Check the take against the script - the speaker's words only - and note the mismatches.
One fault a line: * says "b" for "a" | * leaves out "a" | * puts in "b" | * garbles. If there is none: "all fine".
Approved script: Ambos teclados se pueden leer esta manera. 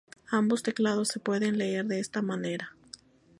* puts in "de"